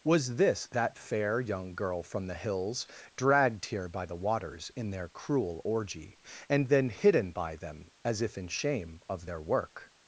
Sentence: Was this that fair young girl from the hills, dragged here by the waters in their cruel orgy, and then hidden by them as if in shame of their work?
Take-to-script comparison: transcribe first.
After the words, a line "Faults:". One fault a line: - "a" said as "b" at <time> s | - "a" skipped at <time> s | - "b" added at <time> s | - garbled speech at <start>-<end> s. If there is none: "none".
Was this that fair young girl from the hills, dragged here by the waters in their cruel orgy, and then hidden by them as if in shame of their work?
Faults:
none